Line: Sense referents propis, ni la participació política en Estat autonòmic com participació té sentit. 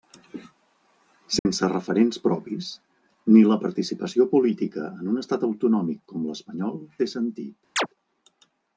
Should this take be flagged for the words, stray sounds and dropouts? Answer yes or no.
yes